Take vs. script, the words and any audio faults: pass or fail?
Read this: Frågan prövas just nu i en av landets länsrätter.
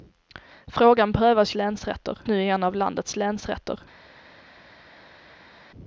fail